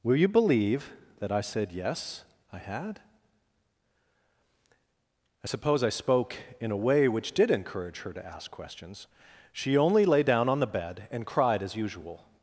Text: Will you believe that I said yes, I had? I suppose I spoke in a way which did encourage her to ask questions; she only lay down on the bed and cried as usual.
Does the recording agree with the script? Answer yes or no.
yes